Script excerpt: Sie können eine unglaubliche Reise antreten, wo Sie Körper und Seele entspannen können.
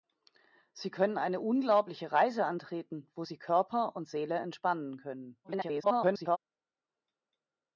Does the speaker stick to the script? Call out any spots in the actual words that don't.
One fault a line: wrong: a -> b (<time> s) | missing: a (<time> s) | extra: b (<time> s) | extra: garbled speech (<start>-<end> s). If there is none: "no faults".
extra: garbled speech (5.4-6.4 s)